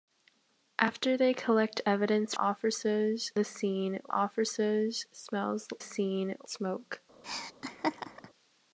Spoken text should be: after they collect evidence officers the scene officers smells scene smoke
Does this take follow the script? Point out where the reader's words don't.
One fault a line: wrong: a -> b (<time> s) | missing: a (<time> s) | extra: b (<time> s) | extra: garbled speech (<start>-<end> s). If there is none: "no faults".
no faults